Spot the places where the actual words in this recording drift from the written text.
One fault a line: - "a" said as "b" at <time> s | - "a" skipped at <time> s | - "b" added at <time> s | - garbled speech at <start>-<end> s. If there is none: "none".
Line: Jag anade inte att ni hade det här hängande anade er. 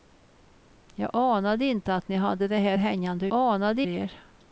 none